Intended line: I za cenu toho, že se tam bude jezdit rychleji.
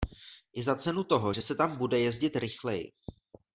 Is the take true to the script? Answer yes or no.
yes